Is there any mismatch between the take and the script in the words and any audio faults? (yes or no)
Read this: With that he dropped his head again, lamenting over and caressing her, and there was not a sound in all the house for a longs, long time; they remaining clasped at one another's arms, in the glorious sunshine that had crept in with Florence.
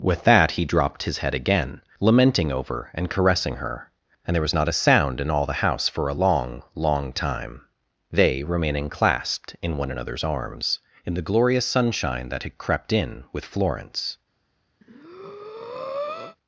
yes